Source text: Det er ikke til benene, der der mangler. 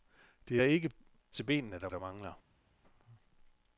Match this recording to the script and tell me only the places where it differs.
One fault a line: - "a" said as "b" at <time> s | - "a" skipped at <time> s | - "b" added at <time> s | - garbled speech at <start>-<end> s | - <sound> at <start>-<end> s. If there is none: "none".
none